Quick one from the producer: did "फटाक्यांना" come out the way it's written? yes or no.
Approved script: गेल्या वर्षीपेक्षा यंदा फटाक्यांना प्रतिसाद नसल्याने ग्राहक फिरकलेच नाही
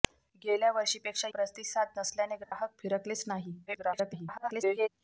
no